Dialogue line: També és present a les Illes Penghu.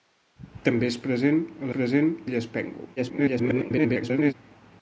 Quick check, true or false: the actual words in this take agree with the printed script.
false